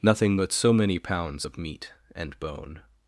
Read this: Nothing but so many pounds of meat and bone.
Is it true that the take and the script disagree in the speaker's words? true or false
false